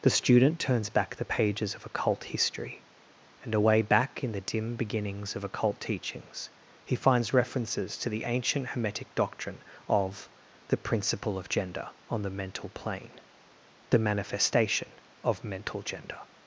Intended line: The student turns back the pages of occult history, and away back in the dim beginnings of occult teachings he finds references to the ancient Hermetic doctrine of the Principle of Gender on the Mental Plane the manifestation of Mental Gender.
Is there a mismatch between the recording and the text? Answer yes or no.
no